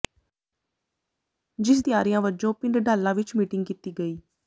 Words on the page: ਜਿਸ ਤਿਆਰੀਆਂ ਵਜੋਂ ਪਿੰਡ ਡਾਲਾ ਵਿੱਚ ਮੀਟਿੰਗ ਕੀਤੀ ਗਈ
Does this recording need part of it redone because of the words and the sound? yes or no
no